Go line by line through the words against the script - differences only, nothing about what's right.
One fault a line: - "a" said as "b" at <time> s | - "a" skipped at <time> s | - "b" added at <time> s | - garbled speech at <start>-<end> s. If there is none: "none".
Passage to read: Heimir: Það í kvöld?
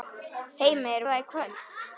none